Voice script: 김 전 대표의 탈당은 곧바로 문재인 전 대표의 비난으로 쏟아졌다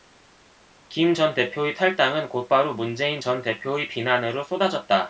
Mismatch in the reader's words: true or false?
false